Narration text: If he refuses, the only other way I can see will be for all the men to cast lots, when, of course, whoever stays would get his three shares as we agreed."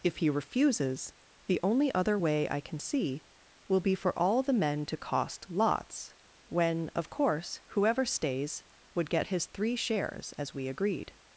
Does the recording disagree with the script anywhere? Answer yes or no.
yes